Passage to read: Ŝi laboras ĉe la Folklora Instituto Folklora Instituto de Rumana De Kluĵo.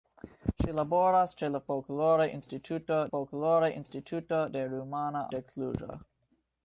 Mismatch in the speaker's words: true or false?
false